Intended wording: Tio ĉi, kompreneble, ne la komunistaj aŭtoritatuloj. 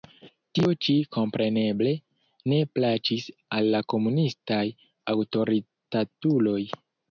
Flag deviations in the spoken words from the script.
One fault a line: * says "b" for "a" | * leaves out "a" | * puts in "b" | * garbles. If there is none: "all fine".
* puts in "plaĉis al"